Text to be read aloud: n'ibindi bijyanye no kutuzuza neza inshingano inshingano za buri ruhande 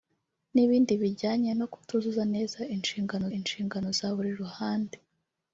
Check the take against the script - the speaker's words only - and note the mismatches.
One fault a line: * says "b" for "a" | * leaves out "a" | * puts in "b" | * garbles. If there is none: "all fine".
all fine